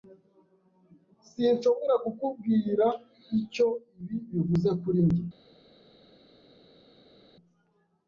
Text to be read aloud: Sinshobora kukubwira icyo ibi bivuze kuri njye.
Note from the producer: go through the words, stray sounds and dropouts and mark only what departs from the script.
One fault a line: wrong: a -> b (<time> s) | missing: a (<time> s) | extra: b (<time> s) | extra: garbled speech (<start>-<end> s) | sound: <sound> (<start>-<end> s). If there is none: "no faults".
no faults